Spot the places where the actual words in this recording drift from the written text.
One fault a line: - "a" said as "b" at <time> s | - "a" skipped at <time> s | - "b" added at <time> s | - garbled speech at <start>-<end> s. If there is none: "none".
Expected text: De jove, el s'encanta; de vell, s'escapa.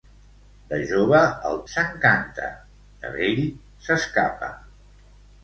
none